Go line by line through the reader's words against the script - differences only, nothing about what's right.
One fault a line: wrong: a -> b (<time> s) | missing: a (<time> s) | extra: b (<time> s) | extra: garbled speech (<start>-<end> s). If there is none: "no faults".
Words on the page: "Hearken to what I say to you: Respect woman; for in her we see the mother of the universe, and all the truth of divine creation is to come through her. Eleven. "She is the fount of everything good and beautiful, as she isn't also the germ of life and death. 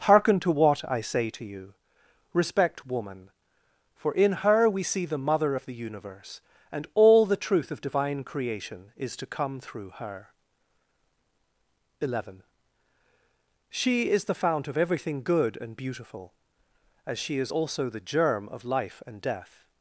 wrong: isn't -> is (17.4 s)